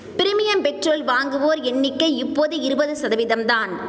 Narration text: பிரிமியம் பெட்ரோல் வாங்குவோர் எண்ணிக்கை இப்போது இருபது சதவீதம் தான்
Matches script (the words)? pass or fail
pass